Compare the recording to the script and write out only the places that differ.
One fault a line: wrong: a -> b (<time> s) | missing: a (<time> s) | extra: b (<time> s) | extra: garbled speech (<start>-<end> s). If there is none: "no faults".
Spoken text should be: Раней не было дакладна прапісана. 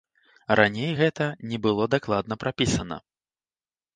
extra: гэта (1.0 s)